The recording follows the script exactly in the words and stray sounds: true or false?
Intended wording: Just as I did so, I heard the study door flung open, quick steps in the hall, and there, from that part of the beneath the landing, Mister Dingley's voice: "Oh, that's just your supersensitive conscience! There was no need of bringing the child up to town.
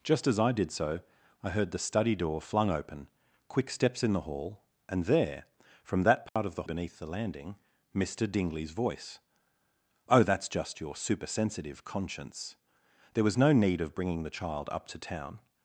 false